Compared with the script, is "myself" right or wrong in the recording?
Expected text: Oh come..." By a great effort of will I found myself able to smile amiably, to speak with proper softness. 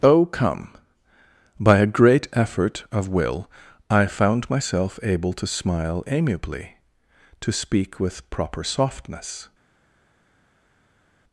right